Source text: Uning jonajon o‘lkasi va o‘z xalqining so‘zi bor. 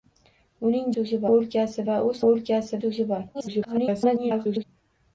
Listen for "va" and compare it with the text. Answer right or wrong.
right